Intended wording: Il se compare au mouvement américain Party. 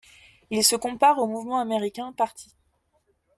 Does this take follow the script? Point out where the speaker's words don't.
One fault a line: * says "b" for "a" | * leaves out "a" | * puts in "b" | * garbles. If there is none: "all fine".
all fine